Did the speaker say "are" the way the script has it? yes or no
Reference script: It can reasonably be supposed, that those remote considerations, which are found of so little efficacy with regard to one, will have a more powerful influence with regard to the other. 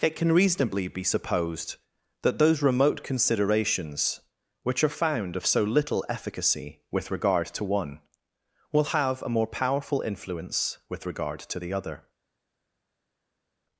yes